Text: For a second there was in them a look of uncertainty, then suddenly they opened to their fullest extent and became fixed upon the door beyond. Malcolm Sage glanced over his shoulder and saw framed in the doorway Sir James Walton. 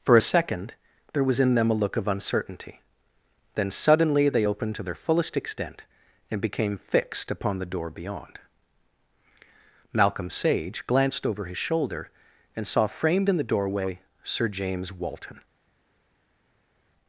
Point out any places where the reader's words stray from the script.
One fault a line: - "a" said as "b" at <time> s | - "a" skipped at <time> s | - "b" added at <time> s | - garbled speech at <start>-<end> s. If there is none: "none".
none